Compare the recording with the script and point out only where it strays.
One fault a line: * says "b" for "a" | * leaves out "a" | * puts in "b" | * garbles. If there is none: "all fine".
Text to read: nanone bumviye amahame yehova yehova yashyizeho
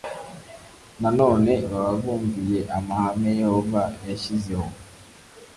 * puts in "baba"
* leaves out "yehova"